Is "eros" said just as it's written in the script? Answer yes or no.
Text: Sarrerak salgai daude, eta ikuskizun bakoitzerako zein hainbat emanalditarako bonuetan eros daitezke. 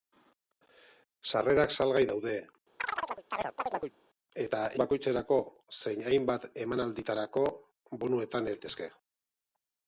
no